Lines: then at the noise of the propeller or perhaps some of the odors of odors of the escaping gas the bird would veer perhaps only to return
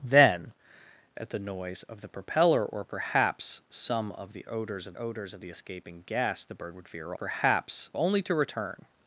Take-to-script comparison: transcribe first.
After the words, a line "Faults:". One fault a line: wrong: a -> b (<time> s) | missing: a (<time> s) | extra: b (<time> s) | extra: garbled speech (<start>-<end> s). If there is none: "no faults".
then at the noise of the propeller or perhaps some of the odors of odors of the escaping gas the bird would veer perhaps only to return
Faults:
no faults